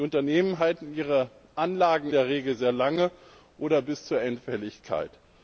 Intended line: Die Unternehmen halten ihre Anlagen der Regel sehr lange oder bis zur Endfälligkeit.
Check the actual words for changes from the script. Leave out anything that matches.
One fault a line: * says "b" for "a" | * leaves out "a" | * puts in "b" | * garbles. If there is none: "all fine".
all fine